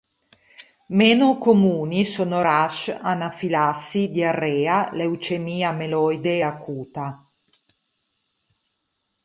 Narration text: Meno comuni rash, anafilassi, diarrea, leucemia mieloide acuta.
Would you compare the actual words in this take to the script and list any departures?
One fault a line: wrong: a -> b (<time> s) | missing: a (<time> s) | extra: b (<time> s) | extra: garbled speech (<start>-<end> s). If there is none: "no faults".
extra: sono (2.0 s)